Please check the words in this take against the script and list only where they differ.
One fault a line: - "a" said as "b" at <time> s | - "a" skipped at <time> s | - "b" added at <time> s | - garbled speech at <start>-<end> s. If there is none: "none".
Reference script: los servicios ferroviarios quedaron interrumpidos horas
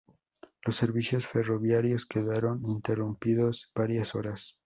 - "varias" added at 3.7 s